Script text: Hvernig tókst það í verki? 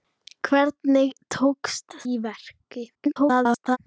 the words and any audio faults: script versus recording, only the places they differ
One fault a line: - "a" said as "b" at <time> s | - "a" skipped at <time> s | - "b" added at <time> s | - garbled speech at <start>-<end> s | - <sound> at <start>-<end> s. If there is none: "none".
- "það" skipped at 2.0 s
- garbled speech at 2.9-3.8 s